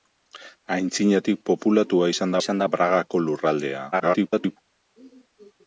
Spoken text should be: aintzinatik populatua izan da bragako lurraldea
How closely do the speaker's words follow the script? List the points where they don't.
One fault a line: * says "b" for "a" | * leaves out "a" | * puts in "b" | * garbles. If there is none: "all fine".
* puts in "izan"
* garbles